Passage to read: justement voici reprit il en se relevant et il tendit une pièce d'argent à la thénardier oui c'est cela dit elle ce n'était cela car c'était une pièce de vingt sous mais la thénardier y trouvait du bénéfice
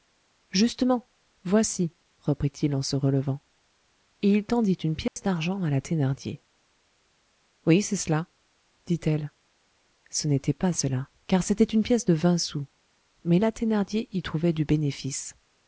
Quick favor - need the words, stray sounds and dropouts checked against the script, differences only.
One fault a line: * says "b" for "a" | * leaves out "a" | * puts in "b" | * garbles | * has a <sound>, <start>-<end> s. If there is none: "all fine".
* has a dropout, 5.1-5.2 s
* puts in "pas"